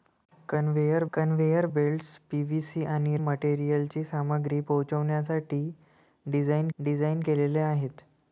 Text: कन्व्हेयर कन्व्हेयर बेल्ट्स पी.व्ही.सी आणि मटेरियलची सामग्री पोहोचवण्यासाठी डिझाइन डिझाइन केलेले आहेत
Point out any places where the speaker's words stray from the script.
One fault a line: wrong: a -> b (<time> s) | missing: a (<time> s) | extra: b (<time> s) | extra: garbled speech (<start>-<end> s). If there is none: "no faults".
no faults